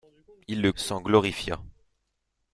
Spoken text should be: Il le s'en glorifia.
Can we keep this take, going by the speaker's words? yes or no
yes